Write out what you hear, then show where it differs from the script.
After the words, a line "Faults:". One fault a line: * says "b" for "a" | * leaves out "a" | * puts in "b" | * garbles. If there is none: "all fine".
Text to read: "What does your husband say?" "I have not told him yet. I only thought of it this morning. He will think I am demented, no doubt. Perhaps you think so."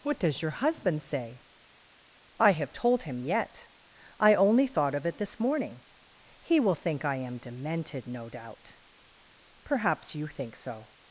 "What does your husband say?" "I have told him yet. I only thought of it this morning. He will think I am demented, no doubt. Perhaps you think so."
Faults:
* leaves out "not"